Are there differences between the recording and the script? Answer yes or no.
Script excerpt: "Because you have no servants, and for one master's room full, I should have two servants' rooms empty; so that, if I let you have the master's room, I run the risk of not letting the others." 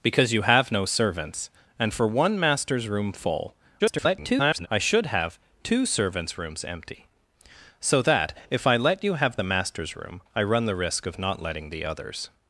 yes